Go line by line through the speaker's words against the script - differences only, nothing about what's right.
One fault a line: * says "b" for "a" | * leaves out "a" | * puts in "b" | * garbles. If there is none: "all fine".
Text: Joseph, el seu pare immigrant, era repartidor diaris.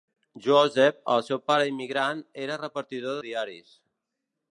all fine